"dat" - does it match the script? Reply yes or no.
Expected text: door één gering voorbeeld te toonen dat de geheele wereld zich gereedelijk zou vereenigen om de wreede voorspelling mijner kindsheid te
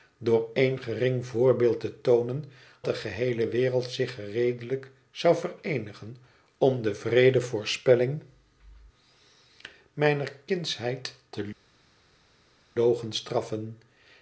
no